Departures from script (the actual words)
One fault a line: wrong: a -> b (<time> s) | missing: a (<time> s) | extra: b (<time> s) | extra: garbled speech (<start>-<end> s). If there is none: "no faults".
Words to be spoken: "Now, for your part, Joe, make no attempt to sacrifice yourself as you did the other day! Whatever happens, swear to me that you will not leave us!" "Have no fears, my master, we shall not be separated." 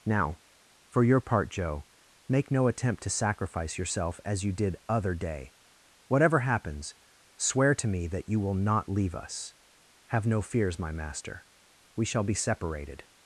missing: the (4.8 s)
missing: not (12.2 s)